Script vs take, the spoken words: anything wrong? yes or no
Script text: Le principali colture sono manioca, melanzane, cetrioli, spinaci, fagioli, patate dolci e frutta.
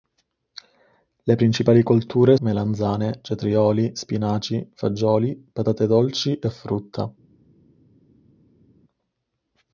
yes